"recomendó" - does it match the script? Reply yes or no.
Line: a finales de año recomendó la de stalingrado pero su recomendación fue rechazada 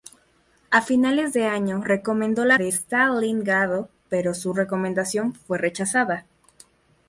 yes